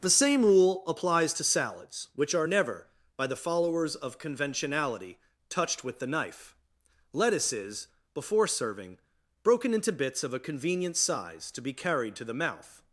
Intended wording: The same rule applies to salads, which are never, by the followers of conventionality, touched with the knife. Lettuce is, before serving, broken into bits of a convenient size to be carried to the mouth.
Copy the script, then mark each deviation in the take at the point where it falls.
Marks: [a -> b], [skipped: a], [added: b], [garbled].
The same rule applies to salads, which are never, by the followers of conventionality, touched with the knife. Lettuce is, before serving, broken into bits of a convenient size to be carried to the mouth.